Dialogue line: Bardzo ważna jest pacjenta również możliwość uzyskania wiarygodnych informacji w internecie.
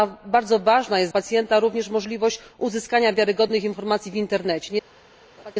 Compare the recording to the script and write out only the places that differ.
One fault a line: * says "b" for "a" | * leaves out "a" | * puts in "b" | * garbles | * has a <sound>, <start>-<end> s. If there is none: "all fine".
* has a laugh, 5.4-5.5 s